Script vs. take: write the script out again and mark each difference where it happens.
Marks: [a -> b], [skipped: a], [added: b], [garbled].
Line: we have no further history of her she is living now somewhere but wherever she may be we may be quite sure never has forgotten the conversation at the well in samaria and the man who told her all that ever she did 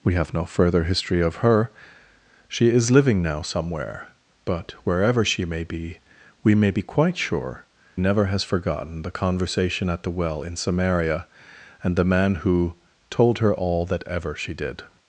we have no further history of her she is living now somewhere but wherever she may be we may be quite sure never has forgotten the conversation at the well in samaria and the man who told her all that ever she did